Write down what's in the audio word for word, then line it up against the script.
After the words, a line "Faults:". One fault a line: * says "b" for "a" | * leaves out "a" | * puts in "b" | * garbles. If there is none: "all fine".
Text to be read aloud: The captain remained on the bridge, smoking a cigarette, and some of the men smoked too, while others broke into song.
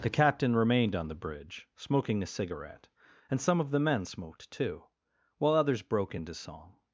The captain remained on the bridge, smoking a cigarette, and some of the men smoked too, while others broke into song.
Faults:
all fine